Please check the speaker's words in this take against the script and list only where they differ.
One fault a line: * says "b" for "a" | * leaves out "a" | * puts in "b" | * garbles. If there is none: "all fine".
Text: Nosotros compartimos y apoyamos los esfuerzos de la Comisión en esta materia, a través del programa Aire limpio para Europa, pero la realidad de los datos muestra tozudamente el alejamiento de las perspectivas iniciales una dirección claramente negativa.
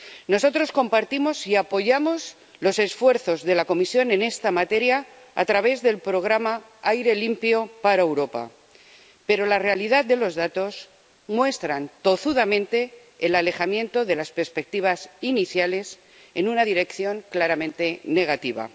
* puts in "en"